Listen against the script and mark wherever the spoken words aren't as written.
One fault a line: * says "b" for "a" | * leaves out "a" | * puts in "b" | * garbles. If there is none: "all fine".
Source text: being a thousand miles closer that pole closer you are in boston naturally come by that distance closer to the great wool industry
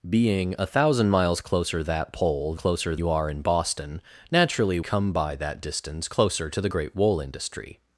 all fine